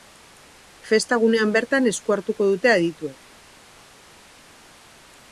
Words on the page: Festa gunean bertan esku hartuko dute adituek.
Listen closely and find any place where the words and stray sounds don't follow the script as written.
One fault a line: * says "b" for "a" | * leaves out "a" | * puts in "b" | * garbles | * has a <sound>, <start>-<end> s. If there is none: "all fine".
all fine